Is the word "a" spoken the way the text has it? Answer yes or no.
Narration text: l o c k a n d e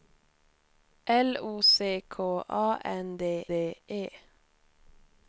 yes